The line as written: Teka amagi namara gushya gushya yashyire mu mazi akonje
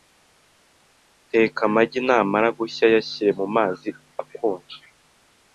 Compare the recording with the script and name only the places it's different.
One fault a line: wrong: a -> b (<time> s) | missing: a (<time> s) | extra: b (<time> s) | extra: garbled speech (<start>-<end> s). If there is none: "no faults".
missing: gushya (2.9 s)